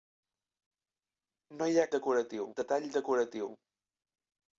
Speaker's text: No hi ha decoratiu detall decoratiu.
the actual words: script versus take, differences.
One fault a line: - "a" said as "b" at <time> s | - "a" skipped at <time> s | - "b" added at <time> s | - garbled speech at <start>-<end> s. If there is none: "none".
none